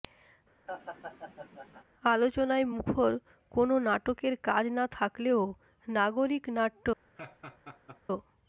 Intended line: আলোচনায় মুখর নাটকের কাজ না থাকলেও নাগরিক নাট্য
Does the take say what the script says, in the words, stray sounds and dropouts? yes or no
no